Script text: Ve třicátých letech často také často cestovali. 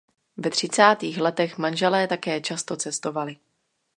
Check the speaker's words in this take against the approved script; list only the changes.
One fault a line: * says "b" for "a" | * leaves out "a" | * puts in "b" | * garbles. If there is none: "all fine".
* says "manželé" for "často"